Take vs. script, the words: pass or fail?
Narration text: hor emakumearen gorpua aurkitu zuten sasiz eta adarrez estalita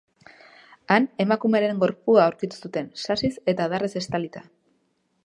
fail